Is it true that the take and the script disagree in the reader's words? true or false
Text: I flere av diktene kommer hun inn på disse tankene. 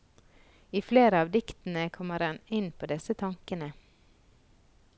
true